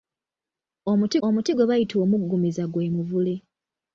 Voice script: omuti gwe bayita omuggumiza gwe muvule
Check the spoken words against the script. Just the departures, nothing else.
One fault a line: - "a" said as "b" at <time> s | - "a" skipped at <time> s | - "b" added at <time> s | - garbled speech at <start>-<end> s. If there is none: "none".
- "omuti" added at 1.3 s